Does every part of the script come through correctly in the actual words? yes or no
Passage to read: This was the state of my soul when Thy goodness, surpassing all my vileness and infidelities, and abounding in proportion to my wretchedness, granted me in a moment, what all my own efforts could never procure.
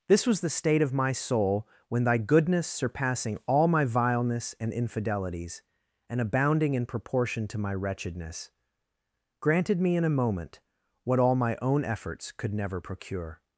yes